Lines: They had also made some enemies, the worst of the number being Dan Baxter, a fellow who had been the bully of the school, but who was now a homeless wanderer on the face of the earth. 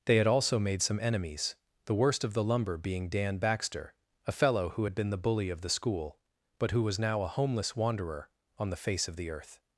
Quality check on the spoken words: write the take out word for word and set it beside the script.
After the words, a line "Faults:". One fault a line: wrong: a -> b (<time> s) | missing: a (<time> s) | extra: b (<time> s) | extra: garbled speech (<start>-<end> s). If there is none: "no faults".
They had also made some enemies, the worst of the lumber being Dan Baxter, a fellow who had been the bully of the school, but who was now a homeless wanderer on the face of the earth.
Faults:
wrong: number -> lumber (2.4 s)